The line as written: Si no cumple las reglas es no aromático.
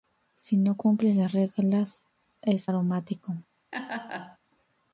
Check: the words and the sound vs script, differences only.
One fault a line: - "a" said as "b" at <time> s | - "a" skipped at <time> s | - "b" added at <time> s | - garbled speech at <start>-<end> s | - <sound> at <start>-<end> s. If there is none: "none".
- "no" skipped at 2.7 s
- laugh at 3.7-4.4 s